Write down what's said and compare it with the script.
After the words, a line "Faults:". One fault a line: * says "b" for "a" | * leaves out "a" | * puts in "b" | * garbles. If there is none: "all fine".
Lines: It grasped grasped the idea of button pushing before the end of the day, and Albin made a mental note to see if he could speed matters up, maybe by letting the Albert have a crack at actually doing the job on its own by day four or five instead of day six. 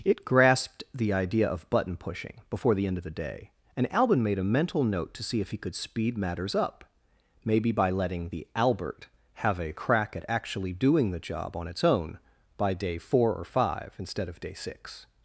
It grasped the idea of button pushing before the end of the day, and Albin made a mental note to see if he could speed matters up, maybe by letting the Albert have a crack at actually doing the job on its own by day four or five instead of day six.
Faults:
* leaves out "grasped"